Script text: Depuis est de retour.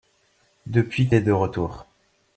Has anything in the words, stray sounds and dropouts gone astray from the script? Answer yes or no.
no